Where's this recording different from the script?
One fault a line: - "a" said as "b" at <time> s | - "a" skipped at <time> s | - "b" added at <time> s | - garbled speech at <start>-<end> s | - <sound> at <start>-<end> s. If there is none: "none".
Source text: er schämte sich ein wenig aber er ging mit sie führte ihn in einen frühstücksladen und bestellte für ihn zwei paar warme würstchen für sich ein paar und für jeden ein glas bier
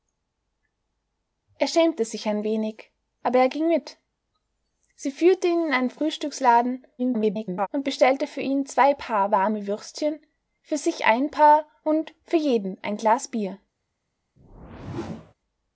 - garbled speech at 7.0-7.7 s
- whoosh at 14.4-15.3 s